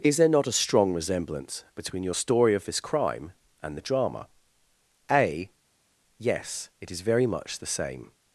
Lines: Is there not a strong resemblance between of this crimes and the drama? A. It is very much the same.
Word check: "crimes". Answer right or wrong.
wrong